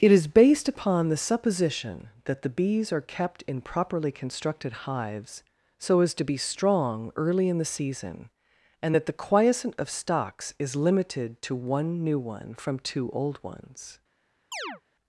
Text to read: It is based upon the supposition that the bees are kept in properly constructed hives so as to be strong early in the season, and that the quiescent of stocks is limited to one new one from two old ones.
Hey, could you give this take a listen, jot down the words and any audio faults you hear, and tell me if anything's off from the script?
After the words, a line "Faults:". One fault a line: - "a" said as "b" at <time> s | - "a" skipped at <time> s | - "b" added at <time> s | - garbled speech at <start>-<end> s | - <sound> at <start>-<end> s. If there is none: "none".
It is based upon the supposition that the bees are kept in properly constructed hives so as to be strong early in the season, and that the quiescent of stocks is limited to one new one from two old ones.
Faults:
- chirp at 14.5-14.8 s